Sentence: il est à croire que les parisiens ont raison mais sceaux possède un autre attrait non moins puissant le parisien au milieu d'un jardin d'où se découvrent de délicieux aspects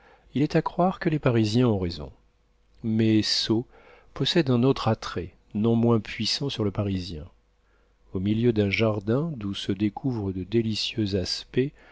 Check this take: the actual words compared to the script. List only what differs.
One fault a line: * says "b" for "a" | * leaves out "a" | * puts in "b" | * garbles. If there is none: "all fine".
* puts in "sur"